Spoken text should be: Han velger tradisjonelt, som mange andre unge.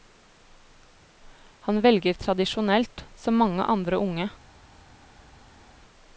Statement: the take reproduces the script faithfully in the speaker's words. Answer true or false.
true